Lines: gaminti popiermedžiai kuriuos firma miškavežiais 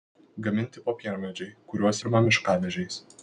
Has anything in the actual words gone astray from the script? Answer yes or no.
no